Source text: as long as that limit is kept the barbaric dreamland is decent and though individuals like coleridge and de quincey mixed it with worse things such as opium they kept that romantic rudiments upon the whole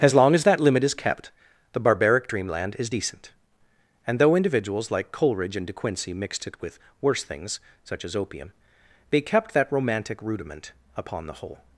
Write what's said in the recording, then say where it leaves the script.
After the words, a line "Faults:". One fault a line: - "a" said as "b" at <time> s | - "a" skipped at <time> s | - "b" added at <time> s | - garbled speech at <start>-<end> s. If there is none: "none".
as long as that limit is kept the barbaric dreamland is decent and though individuals like coleridge and de quincey mixed it with worse things such as opium they kept that romantic rudiment upon the whole
Faults:
- "rudiments" said as "rudiment" at 10.2 s